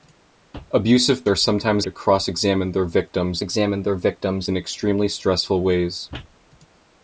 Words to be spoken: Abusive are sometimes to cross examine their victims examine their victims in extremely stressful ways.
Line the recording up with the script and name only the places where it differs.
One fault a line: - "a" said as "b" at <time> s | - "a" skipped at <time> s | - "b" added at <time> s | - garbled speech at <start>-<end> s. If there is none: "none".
none